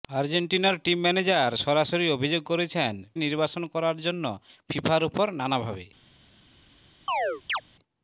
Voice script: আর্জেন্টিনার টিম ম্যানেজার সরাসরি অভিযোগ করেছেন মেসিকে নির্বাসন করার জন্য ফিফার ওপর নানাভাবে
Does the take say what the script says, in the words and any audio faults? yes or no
no